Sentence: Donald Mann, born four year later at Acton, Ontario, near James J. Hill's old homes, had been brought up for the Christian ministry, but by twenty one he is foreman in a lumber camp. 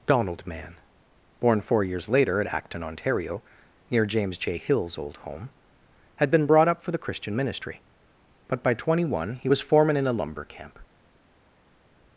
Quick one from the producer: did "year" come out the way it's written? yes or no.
no